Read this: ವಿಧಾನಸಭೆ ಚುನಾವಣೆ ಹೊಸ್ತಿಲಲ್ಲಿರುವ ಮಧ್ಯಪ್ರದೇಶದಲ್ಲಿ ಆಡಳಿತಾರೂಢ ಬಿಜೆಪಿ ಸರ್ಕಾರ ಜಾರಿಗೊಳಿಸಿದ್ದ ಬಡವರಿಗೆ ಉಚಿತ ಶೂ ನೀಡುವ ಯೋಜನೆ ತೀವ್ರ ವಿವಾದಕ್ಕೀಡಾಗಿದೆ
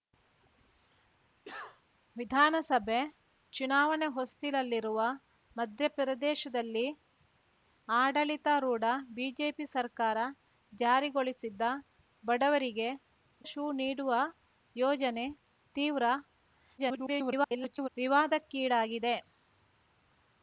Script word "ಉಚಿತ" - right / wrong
wrong